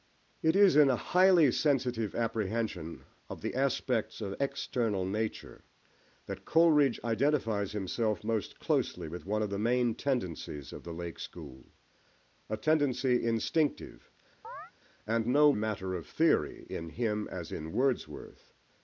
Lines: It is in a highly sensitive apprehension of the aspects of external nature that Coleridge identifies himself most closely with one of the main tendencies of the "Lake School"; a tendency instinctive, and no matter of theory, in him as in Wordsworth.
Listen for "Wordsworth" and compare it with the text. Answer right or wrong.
right